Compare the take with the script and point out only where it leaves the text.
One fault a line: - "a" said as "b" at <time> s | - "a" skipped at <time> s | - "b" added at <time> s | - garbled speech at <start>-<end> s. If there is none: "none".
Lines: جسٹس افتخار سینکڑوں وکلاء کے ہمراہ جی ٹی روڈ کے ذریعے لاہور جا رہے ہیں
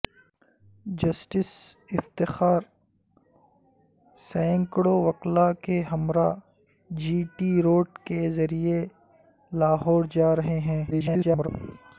- garbled speech at 10.9-11.5 s